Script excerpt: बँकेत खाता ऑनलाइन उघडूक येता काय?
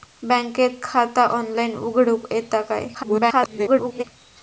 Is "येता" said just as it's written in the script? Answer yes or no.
yes